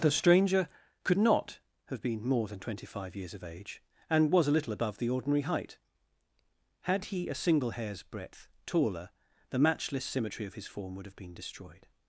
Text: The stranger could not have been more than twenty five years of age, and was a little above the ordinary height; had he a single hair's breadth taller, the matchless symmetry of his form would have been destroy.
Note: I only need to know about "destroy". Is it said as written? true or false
false